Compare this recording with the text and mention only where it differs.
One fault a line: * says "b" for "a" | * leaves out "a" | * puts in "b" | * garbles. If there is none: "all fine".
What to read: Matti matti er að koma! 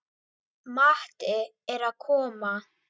* leaves out "matti"